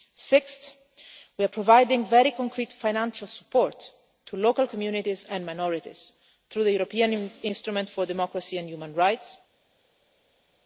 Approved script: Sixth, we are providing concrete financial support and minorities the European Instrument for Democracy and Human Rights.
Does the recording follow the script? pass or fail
fail